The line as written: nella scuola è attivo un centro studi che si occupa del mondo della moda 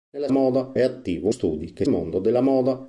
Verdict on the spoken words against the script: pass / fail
fail